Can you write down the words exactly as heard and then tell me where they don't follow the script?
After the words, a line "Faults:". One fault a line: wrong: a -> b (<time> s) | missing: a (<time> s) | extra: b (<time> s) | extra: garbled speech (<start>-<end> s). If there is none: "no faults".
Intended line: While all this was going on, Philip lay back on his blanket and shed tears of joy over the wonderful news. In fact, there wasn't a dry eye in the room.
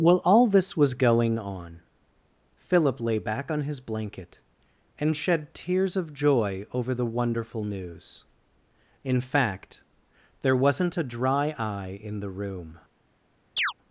While all this was going on, Philip lay back on his blanket and shed tears of joy over the wonderful news. In fact, there wasn't a dry eye in the room.
Faults:
no faults